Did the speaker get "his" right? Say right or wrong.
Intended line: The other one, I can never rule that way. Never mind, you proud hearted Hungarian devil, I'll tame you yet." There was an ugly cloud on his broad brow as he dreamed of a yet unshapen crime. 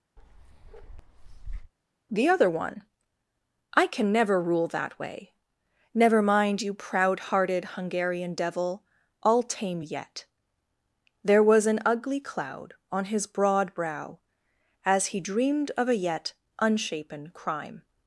right